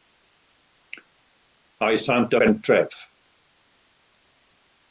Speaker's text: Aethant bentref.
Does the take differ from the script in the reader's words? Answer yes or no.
no